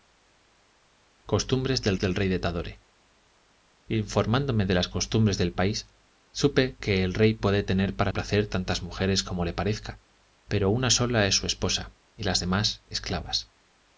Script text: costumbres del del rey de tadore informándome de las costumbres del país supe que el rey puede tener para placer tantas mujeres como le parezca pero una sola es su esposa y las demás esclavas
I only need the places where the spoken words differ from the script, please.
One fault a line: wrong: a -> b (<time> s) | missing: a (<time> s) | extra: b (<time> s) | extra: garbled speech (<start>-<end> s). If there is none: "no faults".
no faults